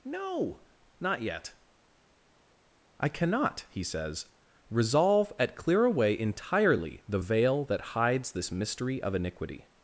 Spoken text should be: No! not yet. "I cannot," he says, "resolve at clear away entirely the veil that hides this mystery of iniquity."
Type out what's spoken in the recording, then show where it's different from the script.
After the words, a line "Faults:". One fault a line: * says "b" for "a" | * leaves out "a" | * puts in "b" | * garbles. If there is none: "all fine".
No! not yet. "I cannot," he says, "resolve at clear away entirely the veil that hides this mystery of iniquity."
Faults:
all fine